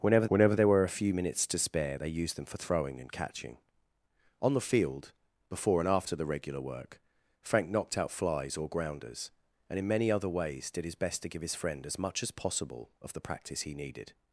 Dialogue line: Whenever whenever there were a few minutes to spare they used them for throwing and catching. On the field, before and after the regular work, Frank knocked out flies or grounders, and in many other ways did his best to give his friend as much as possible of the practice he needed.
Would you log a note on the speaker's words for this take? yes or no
no